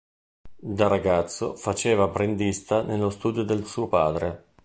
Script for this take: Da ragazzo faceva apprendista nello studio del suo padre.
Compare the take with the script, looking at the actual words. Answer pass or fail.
pass